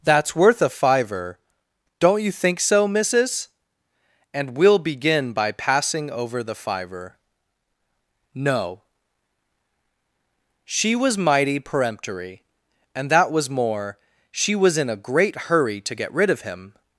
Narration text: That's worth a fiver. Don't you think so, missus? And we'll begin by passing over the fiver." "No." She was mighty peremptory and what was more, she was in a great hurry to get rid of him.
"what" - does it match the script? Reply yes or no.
no